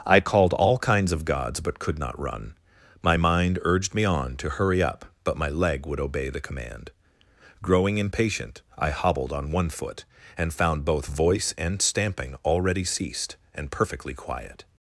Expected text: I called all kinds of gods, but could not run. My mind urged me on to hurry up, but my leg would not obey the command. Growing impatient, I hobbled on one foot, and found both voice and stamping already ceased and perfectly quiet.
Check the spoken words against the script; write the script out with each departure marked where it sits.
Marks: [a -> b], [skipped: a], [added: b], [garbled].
I called all kinds of gods, but could not run. My mind urged me on to hurry up, but my leg would [skipped: not] obey the command. Growing impatient, I hobbled on one foot, and found both voice and stamping already ceased and perfectly quiet.